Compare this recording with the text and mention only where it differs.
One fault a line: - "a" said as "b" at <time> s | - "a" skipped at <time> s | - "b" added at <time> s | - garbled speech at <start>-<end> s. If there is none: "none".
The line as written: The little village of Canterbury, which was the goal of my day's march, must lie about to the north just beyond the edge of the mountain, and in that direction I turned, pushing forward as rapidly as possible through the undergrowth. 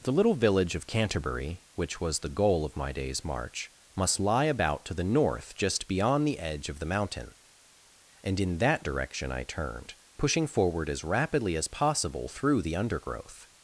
none